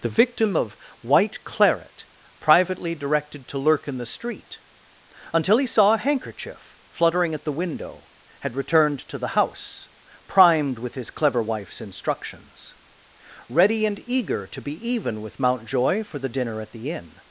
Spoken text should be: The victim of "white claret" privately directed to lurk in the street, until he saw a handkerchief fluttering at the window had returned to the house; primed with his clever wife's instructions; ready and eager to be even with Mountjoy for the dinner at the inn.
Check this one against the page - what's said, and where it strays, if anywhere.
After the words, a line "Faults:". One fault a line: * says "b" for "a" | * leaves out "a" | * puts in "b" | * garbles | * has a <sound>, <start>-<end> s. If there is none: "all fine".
The victim of "white claret" privately directed to lurk in the street, until he saw a handkerchief fluttering at the window had returned to the house; primed with his clever wife's instructions; ready and eager to be even with Mountjoy for the dinner at the inn.
Faults:
all fine